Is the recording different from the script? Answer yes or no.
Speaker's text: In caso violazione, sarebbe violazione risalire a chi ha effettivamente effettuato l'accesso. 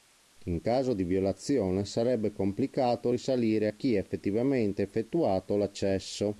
yes